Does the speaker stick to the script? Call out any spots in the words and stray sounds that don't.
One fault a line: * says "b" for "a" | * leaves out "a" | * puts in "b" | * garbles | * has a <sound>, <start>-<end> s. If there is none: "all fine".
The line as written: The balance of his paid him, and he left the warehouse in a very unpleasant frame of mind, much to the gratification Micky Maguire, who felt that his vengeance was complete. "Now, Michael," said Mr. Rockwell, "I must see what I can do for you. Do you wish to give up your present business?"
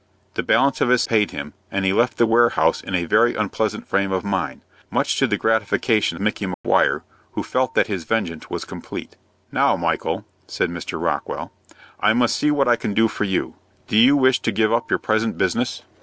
* has a dropout, 6.5-6.6 s